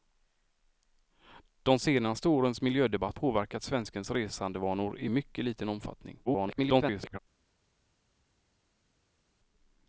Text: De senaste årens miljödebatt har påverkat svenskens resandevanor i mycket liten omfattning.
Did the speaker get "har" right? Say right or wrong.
wrong